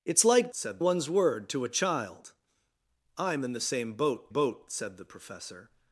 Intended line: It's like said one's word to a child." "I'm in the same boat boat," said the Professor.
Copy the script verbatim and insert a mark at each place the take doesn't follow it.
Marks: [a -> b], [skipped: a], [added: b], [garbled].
It's like said one's word to a child." "I'm in the same boat boat," said the Professor.